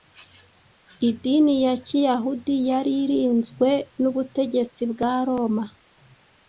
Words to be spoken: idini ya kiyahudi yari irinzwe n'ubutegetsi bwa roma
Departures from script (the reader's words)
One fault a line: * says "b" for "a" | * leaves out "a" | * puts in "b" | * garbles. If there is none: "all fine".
all fine